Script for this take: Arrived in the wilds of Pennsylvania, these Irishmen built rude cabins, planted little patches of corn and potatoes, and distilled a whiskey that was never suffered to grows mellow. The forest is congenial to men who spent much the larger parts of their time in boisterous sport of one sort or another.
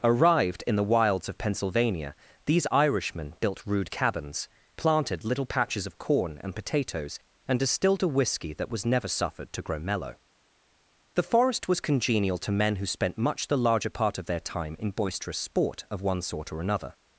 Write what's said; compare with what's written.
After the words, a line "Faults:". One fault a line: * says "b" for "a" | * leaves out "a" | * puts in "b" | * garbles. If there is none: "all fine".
Arrived in the wilds of Pennsylvania, these Irishmen built rude cabins, planted little patches of corn and potatoes, and distilled a whiskey that was never suffered to grow mellow. The forest was congenial to men who spent much the larger part of their time in boisterous sport of one sort or another.
Faults:
* says "grow" for "grows"
* says "was" for "is"
* says "part" for "parts"